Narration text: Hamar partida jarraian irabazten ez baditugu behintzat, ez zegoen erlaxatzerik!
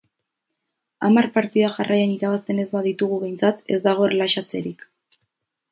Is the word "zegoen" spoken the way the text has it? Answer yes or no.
no